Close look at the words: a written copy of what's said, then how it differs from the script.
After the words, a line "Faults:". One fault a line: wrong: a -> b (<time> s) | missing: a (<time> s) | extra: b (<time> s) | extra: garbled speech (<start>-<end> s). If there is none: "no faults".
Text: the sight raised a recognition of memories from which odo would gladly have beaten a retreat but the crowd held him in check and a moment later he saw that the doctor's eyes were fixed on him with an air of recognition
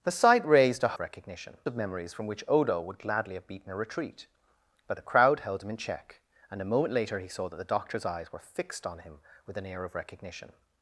the sight raised a recognition of memories from which odo would gladly have beaten a retreat but the crowd held him in check and a moment later he saw that the doctor's eyes were fixed on him with an air of recognition
Faults:
no faults